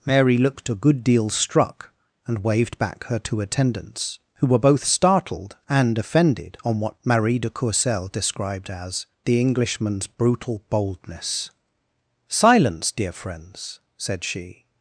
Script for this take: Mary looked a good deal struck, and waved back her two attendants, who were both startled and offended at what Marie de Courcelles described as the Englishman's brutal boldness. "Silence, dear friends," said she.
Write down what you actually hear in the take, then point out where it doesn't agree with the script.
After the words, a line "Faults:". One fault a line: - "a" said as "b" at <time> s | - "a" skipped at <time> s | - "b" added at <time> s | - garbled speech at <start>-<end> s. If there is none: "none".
Mary looked a good deal struck, and waved back her two attendants, who were both startled and offended on what Marie de Courcelles described as the Englishman's brutal boldness. "Silence, dear friends," said she.
Faults:
- "at" said as "on" at 6.6 s